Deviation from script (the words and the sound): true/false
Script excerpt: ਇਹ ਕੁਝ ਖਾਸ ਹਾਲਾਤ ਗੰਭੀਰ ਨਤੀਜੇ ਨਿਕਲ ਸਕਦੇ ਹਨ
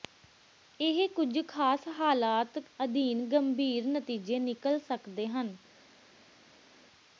true